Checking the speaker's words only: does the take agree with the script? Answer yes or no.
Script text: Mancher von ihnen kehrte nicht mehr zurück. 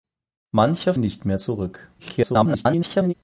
no